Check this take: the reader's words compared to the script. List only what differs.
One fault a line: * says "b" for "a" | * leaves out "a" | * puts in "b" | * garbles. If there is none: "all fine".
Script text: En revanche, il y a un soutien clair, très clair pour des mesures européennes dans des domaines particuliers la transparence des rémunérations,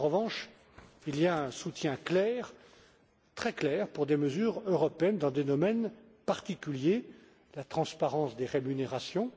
all fine